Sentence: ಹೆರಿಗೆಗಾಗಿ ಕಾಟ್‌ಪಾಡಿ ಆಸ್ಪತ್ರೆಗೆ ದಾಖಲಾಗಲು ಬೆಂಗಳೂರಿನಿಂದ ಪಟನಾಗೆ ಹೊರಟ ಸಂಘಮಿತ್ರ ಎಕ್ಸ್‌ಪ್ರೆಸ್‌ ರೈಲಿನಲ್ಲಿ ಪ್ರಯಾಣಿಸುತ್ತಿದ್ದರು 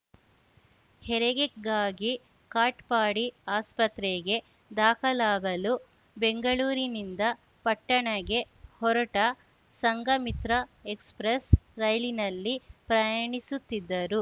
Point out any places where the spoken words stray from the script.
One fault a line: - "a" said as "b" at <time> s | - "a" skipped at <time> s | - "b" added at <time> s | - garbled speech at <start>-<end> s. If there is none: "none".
none